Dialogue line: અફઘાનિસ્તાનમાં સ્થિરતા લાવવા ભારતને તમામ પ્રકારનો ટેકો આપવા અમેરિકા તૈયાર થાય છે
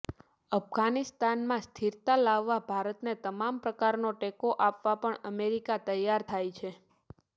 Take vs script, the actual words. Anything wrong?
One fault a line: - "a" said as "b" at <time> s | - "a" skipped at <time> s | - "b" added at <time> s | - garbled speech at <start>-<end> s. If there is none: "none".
- "પણ" added at 5.0 s